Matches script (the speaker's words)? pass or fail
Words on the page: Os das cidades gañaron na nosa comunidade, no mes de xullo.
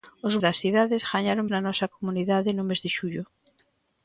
pass